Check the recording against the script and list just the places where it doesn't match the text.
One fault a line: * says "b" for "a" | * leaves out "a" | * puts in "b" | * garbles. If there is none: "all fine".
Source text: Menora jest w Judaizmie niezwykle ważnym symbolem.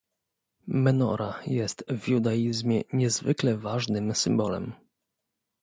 all fine